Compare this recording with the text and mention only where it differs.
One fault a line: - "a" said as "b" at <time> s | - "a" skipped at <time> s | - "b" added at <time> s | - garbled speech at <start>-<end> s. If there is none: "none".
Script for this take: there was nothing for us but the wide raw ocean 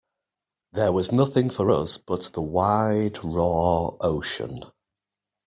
none